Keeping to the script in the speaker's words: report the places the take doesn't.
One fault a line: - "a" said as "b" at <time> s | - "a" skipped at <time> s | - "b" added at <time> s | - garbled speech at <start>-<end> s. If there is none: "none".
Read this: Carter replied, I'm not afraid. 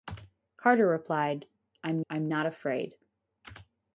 - "I'm" added at 2.1 s